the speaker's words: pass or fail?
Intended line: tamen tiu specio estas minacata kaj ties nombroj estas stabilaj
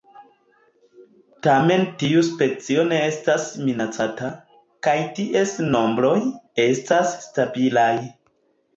fail